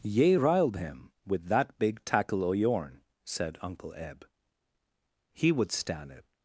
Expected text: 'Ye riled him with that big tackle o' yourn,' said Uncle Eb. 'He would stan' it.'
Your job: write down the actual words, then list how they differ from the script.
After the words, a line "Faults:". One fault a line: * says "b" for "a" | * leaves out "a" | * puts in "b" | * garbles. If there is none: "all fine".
'Ye riled him with that big tackle o' yourn,' said Uncle Eb. 'He would stan' it.'
Faults:
all fine